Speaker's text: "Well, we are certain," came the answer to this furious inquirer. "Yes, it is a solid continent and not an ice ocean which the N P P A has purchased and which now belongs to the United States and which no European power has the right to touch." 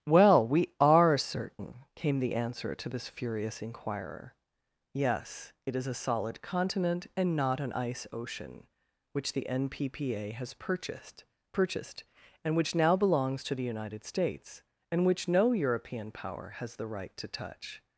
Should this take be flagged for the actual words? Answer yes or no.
yes